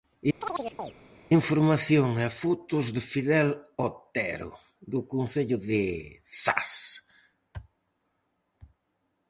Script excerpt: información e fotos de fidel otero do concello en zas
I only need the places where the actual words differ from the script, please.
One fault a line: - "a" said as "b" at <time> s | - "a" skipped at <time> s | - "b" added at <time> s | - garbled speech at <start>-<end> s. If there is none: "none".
- "en" said as "de" at 5.7 s